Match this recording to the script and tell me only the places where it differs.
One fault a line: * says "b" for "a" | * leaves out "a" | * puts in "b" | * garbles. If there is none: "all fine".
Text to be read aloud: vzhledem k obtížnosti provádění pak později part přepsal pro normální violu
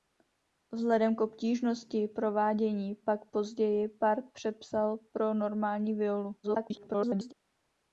* garbles